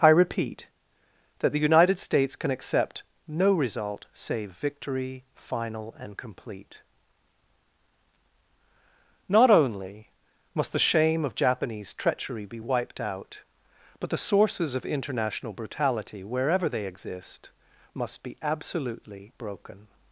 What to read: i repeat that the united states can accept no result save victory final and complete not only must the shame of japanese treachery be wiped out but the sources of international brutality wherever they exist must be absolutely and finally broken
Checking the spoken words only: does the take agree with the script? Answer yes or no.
no